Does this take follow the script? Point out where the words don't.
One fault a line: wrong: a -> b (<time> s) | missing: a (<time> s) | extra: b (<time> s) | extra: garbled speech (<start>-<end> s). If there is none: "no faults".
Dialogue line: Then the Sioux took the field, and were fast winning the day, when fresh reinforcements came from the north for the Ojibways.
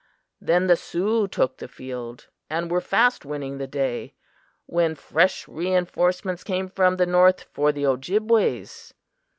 no faults